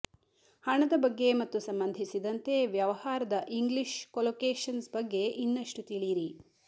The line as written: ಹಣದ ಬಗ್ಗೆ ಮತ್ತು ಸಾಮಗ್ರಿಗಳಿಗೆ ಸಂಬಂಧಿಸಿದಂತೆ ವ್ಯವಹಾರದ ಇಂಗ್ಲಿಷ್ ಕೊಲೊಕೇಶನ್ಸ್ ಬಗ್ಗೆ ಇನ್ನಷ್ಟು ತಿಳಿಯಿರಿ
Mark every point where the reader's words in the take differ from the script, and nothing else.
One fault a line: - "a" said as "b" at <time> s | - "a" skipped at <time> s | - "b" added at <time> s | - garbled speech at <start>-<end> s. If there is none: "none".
- "ಸಾಮಗ್ರಿಗಳಿಗೆ" skipped at 1.6 s